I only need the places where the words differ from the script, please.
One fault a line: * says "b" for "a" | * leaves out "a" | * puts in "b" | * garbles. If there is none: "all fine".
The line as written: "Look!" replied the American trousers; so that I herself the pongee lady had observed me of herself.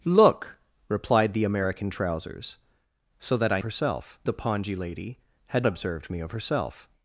all fine